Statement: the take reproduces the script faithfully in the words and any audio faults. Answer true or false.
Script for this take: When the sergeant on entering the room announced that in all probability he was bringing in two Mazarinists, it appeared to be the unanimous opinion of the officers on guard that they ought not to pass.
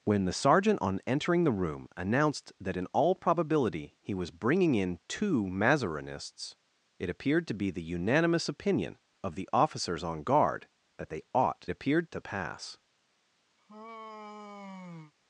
false